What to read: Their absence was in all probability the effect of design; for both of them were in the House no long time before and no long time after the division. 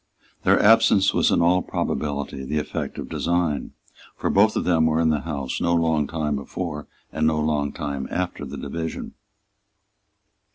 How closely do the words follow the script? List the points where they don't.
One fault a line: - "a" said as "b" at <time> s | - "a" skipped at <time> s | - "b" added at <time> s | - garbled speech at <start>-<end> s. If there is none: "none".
none